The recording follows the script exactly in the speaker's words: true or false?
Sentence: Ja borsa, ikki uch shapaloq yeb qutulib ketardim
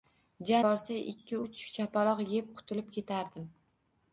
true